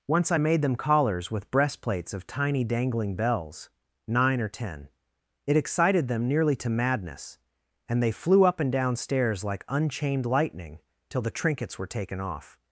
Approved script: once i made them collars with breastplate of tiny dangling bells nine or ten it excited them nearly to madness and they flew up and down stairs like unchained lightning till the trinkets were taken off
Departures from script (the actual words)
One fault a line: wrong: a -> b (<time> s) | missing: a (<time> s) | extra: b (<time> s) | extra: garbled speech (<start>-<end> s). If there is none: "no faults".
wrong: breastplate -> breastplates (1.5 s)